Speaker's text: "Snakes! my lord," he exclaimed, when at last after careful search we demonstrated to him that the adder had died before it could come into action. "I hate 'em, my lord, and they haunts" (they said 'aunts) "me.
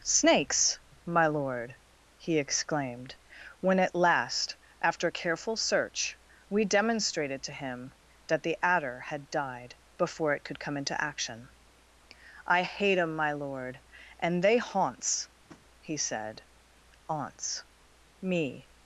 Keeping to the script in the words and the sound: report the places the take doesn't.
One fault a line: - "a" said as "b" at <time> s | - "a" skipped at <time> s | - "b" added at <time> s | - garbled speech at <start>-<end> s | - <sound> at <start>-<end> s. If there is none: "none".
- tap at 15.5-15.6 s
- "they" said as "he" at 15.8 s